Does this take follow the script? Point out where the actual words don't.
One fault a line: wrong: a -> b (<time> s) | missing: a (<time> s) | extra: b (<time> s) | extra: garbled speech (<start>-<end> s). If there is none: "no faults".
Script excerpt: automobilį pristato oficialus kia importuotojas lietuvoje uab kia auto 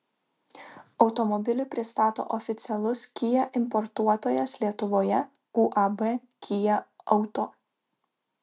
no faults